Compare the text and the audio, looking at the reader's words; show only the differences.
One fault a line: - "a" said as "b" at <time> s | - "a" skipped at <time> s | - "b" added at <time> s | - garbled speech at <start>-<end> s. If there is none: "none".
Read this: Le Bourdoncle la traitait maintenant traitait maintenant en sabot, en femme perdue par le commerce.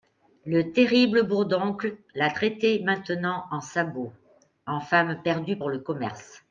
- "terrible" added at 0.7 s
- "traitait maintenant" skipped at 3.4 s
- "par" said as "pour" at 5.5 s